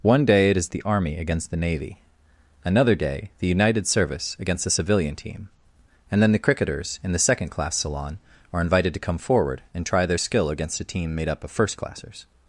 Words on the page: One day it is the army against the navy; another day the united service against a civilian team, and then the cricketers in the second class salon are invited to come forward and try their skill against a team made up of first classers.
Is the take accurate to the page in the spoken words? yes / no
no